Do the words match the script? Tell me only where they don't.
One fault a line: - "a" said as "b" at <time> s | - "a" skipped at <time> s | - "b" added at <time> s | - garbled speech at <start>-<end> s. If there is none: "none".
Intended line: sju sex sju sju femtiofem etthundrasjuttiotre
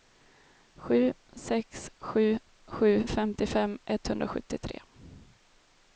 none